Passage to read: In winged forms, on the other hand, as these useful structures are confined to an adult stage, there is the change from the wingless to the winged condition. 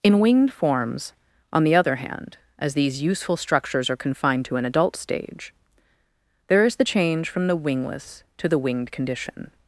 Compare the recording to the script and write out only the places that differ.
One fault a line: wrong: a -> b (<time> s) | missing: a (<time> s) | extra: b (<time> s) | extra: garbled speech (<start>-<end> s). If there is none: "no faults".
no faults